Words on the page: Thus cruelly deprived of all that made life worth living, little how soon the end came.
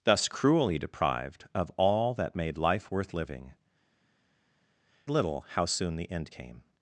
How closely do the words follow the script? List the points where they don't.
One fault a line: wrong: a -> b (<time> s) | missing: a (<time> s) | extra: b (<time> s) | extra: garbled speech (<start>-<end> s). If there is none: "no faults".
no faults